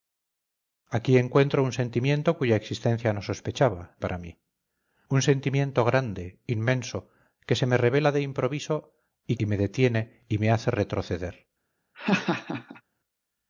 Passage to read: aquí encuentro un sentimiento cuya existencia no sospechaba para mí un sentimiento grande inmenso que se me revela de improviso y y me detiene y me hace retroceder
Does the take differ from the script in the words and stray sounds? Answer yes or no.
yes